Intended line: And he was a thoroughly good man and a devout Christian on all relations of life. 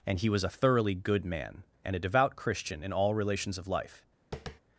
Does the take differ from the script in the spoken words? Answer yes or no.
yes